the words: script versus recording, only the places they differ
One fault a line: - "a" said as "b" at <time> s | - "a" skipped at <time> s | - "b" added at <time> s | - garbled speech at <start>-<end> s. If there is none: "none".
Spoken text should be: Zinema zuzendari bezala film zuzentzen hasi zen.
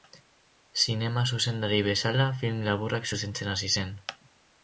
- "laburrak" added at 2.7 s